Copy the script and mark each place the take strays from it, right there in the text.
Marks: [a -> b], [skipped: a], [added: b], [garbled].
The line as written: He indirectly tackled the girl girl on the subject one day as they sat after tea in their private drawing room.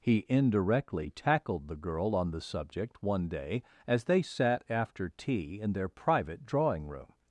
He indirectly tackled the girl [skipped: girl] on the subject one day as they sat after tea in their private drawing room.